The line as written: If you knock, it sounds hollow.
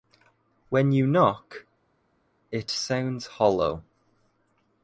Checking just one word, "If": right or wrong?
wrong